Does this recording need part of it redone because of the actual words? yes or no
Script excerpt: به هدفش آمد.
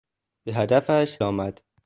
no